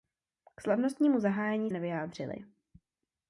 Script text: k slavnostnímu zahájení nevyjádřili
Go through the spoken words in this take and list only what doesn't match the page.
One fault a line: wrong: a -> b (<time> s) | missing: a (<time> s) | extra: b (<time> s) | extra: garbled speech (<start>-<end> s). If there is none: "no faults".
no faults